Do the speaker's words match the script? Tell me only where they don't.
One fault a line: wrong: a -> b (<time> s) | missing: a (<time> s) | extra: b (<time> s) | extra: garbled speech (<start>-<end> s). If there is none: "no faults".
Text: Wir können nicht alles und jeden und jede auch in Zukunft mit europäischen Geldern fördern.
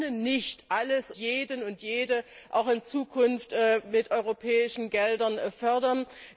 missing: und (1.1 s)